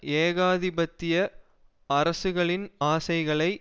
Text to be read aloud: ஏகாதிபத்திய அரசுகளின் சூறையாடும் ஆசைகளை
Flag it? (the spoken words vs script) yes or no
yes